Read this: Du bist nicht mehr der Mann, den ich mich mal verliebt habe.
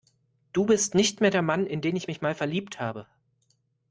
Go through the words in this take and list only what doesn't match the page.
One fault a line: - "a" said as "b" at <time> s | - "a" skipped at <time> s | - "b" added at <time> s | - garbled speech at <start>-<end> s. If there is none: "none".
- "in" added at 1.7 s